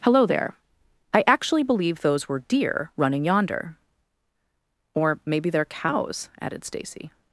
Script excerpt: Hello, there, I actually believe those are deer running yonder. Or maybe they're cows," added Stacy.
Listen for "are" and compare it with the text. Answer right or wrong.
wrong